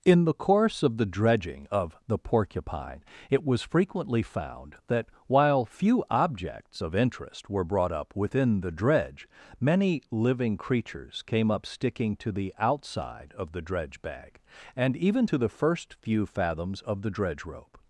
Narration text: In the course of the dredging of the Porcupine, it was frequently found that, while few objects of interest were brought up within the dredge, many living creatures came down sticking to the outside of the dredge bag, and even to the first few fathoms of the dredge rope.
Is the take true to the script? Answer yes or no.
no